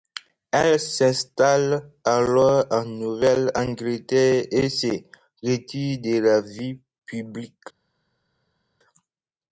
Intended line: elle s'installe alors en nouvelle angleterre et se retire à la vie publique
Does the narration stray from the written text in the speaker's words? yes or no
yes